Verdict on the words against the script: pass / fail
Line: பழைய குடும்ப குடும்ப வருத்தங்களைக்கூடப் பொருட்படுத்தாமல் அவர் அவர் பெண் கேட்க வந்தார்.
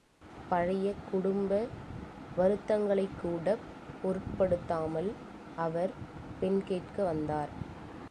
fail